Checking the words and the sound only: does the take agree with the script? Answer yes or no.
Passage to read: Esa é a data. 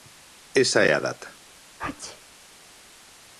no